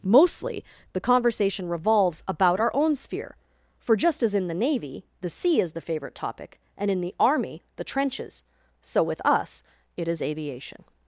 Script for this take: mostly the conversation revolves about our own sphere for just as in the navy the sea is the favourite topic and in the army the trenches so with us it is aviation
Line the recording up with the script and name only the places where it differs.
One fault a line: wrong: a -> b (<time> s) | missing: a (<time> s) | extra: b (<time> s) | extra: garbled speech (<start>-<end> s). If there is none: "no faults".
no faults